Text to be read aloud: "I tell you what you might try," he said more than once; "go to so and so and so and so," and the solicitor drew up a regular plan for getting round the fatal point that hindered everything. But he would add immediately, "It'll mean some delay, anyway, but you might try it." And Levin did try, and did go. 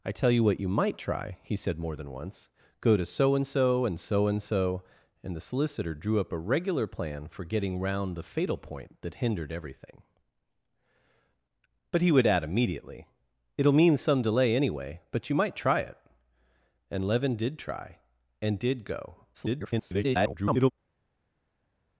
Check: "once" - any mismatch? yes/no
no